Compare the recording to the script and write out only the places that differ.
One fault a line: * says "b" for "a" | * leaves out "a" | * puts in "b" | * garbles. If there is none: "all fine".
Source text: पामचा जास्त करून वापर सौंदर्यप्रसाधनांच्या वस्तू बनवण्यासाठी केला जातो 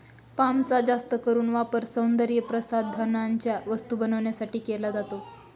all fine